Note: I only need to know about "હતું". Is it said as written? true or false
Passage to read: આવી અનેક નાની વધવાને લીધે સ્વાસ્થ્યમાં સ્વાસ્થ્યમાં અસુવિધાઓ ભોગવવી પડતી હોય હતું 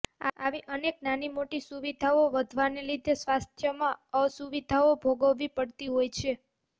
false